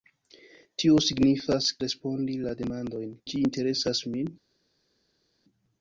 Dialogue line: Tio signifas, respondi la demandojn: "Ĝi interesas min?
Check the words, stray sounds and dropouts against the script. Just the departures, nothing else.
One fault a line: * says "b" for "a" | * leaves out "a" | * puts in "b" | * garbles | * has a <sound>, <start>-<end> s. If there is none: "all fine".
all fine